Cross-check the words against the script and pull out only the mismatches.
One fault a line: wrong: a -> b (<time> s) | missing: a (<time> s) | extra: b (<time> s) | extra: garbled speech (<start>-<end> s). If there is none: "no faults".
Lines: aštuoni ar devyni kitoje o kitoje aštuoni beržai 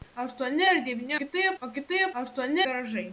no faults